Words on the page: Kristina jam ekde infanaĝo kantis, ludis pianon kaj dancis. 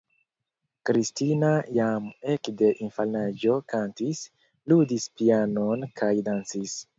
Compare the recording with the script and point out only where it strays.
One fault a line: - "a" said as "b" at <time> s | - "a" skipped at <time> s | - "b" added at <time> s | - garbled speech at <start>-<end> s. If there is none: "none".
none